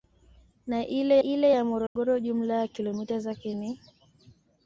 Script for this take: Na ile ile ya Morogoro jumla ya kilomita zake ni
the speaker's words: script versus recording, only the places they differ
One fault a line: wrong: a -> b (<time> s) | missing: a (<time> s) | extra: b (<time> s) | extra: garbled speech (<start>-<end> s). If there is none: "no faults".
no faults